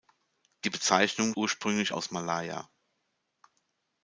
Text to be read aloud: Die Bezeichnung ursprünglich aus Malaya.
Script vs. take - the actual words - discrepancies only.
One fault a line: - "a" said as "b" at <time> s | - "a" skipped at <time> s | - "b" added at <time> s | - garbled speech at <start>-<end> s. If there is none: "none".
none